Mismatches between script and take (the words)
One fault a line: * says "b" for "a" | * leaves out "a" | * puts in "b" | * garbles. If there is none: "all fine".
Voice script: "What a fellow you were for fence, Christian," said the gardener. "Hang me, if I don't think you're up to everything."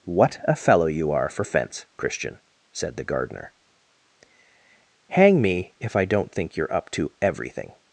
* says "are" for "were"